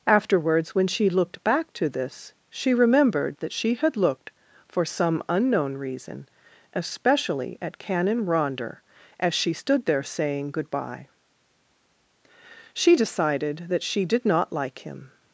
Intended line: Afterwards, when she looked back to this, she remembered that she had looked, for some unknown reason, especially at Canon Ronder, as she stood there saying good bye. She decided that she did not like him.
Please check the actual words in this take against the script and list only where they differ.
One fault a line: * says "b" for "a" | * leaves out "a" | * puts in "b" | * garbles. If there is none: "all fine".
all fine